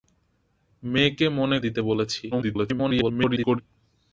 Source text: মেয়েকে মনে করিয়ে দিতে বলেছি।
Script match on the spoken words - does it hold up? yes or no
no